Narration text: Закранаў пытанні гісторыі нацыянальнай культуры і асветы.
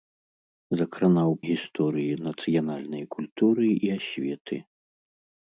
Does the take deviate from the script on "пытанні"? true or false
true